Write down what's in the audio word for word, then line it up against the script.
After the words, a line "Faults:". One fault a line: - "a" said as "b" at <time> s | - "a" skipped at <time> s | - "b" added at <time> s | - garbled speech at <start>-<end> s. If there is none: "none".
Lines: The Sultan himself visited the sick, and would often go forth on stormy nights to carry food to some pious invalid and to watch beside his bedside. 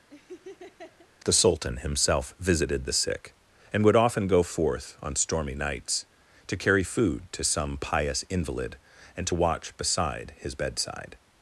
The Sultan himself visited the sick, and would often go forth on stormy nights to carry food to some pious invalid and to watch beside his bedside.
Faults:
none